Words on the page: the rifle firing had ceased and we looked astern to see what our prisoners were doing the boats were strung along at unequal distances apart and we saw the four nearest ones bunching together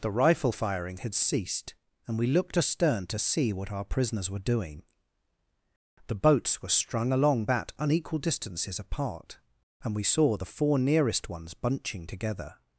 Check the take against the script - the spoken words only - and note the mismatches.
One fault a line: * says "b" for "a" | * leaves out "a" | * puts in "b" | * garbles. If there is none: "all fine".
* says "that" for "at"